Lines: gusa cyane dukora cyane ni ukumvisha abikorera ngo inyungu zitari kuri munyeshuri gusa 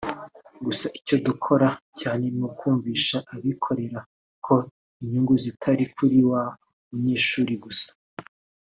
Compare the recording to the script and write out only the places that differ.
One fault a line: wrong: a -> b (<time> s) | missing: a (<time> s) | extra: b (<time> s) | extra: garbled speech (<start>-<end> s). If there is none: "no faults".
wrong: cyane -> icyo (1.0 s)
wrong: ngo -> ko (4.5 s)
extra: wa (6.3 s)